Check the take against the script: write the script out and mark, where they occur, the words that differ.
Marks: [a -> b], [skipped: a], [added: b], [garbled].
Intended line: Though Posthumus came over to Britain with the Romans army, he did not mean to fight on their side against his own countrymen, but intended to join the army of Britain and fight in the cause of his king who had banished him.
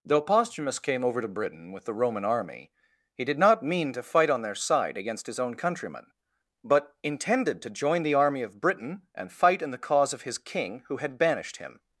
Though Posthumus came over to Britain with the [Romans -> Roman] army, he did not mean to fight on their side against his own countrymen, but intended to join the army of Britain and fight in the cause of his king who had banished him.